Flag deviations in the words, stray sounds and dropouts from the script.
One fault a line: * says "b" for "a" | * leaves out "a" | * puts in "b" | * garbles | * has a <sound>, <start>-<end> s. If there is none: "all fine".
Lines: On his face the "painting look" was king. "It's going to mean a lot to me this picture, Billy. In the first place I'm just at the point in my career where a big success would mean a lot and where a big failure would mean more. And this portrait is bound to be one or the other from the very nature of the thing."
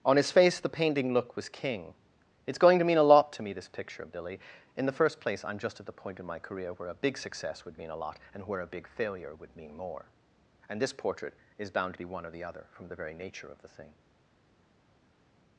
* puts in "of"